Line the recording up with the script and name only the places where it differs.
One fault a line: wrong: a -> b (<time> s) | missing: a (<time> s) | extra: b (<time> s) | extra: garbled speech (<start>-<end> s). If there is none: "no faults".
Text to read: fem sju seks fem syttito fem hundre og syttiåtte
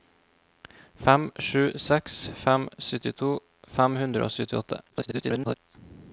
extra: garbled speech (4.9-5.6 s)